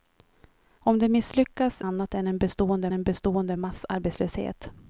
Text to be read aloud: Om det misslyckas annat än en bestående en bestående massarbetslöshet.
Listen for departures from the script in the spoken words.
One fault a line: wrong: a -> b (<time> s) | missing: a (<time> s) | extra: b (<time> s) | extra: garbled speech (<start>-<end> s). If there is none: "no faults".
no faults